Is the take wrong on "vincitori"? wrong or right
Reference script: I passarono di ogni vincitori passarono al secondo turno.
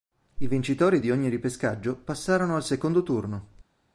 wrong